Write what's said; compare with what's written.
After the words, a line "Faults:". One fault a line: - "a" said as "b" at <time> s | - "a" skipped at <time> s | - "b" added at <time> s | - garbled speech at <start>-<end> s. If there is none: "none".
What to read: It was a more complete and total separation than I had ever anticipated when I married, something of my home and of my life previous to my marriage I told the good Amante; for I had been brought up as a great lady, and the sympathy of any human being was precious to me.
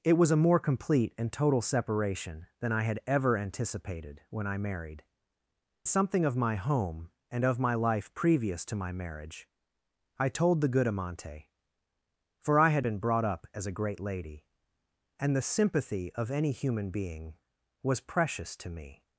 It was a more complete and total separation than I had ever anticipated when I married, something of my home and of my life previous to my marriage I told the good Amante; for I had been brought up as a great lady, and the sympathy of any human being was precious to me.
Faults:
none